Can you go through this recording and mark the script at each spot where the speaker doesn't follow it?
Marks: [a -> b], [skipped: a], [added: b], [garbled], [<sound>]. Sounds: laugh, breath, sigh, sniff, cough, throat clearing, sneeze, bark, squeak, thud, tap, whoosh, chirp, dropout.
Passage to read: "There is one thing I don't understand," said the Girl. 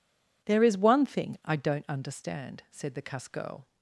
"There is one thing I don't understand," said the [added: cuss] Girl.